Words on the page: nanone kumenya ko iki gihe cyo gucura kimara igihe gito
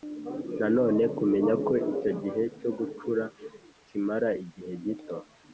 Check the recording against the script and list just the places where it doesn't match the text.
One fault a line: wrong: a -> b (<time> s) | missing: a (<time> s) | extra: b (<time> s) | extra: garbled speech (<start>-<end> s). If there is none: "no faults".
wrong: iki -> icyo (1.9 s)